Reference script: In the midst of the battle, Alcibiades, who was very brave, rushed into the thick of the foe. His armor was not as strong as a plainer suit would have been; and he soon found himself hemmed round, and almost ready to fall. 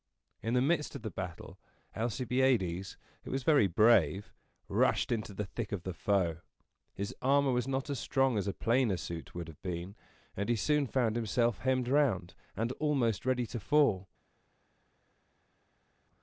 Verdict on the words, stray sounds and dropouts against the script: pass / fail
pass